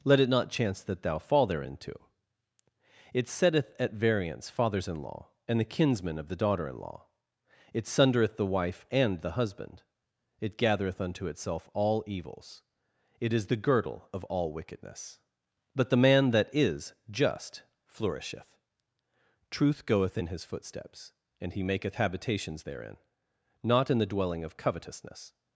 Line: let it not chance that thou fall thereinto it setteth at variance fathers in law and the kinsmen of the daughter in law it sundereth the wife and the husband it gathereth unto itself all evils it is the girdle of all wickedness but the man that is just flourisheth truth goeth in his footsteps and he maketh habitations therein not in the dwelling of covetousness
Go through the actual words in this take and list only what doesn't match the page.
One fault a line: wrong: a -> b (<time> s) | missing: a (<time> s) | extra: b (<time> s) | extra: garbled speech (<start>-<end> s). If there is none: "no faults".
no faults